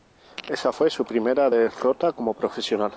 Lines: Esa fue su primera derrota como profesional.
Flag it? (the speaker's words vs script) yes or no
no